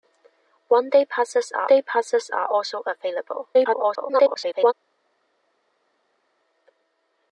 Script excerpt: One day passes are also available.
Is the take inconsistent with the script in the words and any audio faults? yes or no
yes